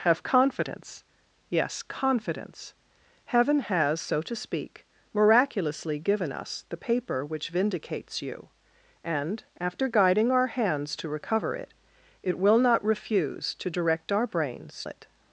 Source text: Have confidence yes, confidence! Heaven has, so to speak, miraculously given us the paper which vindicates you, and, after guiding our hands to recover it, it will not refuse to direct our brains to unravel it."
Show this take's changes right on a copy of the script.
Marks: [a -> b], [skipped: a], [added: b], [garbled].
Have confidence yes, confidence! Heaven has, so to speak, miraculously given us the paper which vindicates you, and, after guiding our hands to recover it, it will not refuse to direct our brains [skipped: to unravel] it."